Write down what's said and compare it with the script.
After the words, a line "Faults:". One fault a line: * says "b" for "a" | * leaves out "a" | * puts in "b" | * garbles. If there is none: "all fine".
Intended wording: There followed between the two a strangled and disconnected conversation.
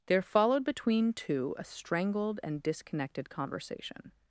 There followed between two a strangled and disconnected conversation.
Faults:
* leaves out "the"